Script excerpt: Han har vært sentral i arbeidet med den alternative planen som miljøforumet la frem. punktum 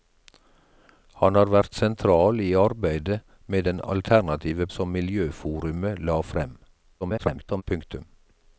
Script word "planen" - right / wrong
wrong